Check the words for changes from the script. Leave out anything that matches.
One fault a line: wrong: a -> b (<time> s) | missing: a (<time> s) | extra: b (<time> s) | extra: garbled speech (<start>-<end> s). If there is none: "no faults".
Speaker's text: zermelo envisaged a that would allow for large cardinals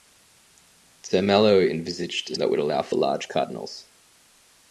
no faults